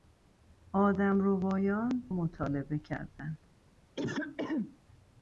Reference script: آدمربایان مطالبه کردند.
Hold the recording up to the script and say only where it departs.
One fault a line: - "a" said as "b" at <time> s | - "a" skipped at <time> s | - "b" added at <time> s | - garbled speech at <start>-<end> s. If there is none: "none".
none